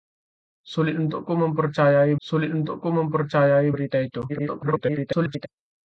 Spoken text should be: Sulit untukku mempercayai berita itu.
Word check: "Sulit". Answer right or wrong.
right